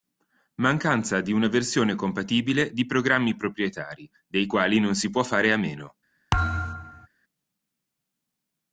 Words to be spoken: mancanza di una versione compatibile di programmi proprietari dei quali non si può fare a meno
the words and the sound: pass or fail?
fail